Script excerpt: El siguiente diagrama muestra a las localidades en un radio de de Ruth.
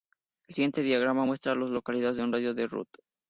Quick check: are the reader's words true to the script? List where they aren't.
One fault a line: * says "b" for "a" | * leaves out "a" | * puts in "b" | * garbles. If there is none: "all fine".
all fine